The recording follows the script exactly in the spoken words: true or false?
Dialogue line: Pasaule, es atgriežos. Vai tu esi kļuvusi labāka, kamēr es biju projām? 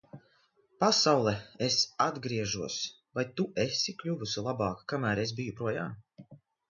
true